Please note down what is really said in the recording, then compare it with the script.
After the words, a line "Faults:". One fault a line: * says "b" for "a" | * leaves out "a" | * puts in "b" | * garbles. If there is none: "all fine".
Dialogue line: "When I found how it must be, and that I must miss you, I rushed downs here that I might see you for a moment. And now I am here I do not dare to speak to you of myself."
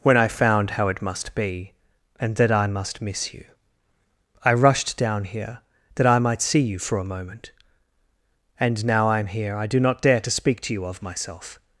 "When I found how it must be, and that I must miss you, I rushed down here that I might see you for a moment. And now I am here I do not dare to speak to you of myself."
Faults:
* says "down" for "downs"